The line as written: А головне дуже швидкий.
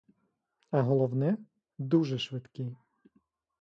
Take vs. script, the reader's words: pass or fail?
pass